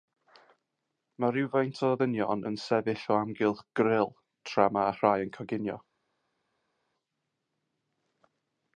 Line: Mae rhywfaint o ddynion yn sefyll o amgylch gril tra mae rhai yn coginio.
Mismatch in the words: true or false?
false